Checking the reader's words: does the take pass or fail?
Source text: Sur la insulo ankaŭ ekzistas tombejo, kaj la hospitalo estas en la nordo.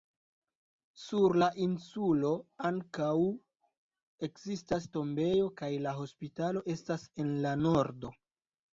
pass